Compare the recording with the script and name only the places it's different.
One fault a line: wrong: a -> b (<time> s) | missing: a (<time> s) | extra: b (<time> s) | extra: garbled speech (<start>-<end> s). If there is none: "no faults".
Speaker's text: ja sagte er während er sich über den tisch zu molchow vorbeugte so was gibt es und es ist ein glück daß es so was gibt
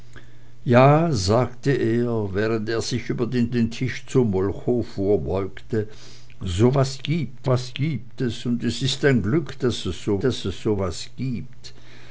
extra: den (3.5 s)
extra: was gibt (7.5 s)
extra: daß es so (10.2 s)